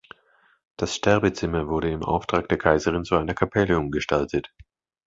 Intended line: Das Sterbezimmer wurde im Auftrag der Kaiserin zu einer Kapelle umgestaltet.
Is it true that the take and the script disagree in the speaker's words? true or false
false